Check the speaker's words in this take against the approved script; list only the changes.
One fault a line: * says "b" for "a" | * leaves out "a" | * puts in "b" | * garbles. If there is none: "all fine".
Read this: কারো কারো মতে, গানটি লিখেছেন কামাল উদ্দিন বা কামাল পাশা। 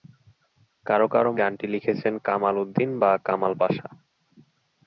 * leaves out "মতে"